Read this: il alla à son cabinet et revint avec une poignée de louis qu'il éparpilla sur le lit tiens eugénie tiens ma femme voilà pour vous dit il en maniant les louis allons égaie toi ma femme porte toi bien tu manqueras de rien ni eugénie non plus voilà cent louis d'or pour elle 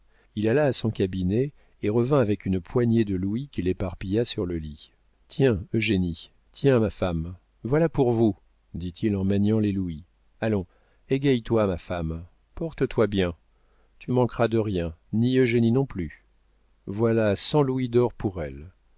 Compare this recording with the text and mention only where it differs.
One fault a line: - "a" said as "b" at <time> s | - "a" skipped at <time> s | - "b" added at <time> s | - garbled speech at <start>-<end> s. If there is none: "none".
none